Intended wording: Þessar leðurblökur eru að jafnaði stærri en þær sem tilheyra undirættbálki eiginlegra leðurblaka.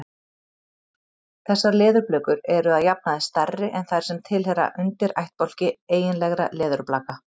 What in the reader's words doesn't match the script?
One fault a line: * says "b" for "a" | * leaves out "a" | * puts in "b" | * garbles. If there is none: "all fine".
all fine